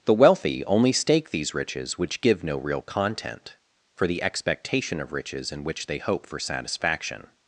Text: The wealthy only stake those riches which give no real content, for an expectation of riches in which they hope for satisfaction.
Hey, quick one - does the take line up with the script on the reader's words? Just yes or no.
no